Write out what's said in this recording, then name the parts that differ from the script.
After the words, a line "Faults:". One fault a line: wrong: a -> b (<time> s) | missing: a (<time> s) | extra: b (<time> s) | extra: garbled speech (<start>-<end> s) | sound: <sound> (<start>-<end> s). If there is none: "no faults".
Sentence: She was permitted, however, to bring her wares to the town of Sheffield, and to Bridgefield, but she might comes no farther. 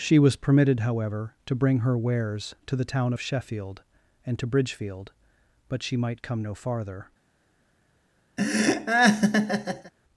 She was permitted, however, to bring her wares to the town of Sheffield, and to Bridgefield, but she might come no farther.
Faults:
wrong: comes -> come (6.2 s)
sound: laugh (8.4-9.9 s)